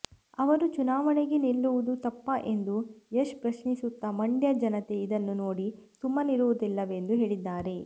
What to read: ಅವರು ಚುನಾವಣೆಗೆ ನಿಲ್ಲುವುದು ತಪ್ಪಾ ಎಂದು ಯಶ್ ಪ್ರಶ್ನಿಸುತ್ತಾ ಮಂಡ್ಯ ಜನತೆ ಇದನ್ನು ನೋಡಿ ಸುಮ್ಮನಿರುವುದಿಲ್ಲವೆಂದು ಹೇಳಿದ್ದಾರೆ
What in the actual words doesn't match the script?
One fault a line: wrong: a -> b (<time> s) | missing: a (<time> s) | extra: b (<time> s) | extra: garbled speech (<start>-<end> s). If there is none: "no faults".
no faults